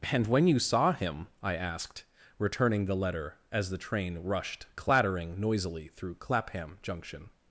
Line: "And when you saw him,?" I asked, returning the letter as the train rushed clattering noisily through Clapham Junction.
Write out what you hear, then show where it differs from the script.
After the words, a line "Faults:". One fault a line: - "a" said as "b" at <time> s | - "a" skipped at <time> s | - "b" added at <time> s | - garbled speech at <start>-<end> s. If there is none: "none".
"And when you saw him,?" I asked, returning the letter as the train rushed clattering noisily through Clapham Junction.
Faults:
none